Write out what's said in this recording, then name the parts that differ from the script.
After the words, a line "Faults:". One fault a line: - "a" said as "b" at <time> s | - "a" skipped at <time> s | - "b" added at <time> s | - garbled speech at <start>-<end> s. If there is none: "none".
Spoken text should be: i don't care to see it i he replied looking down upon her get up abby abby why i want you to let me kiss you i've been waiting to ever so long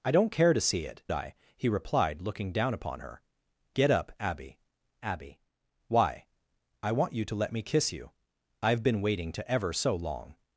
i don't care to see it i he replied looking down upon her get up abby abby why i want you to let me kiss you i've been waiting to ever so long
Faults:
none